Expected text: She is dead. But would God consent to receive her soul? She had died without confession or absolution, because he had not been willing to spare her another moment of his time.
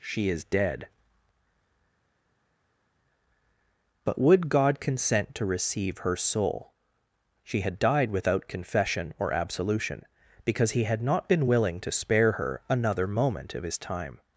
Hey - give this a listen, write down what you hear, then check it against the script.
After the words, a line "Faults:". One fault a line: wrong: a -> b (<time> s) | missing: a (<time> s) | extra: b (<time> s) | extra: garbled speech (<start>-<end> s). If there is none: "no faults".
She is dead. But would God consent to receive her soul? She had died without confession or absolution, because he had not been willing to spare her another moment of his time.
Faults:
no faults